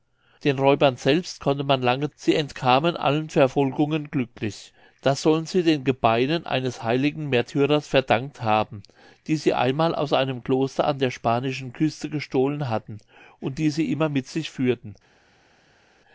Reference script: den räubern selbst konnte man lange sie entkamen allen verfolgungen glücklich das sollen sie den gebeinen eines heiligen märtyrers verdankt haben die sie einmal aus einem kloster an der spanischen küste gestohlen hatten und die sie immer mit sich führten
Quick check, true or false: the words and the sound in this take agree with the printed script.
true